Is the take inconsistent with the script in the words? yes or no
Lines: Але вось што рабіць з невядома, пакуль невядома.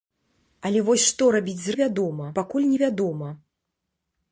no